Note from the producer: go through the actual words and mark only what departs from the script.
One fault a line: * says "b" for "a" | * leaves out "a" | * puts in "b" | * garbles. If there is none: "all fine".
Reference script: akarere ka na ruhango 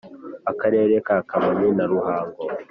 * puts in "kamonyi"